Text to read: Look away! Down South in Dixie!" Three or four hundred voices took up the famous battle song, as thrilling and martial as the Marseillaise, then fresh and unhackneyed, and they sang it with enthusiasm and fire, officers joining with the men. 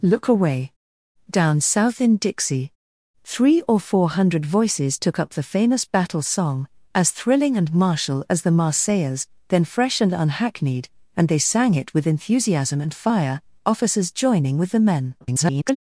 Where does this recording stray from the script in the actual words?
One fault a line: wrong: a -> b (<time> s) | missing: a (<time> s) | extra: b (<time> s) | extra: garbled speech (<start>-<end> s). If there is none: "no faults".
extra: garbled speech (15.2-15.8 s)